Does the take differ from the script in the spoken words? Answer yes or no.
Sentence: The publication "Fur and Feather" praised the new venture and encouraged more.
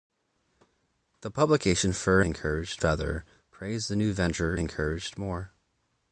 yes